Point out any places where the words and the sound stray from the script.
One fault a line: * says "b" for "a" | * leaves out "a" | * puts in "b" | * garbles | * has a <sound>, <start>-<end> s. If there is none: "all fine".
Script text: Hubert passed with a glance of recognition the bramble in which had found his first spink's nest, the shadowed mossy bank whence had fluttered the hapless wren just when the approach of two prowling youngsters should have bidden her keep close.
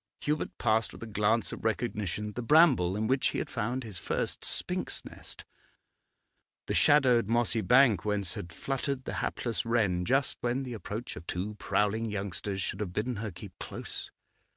* puts in "he"